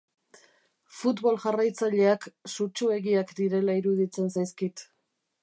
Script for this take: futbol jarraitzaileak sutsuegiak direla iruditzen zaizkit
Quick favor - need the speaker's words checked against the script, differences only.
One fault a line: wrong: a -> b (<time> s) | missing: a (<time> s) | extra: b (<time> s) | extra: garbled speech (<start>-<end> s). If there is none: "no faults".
no faults